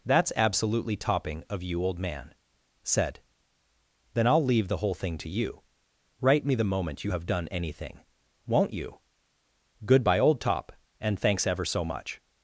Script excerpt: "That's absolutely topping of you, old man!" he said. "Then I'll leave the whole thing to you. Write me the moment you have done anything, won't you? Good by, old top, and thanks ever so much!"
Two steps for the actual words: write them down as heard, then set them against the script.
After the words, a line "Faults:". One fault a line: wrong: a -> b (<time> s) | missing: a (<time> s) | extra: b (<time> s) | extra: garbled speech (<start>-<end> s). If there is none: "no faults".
"That's absolutely topping of you, old man!" said. "Then I'll leave the whole thing to you. Write me the moment you have done anything, won't you? Good by, old top, and thanks ever so much!"
Faults:
missing: he (2.3 s)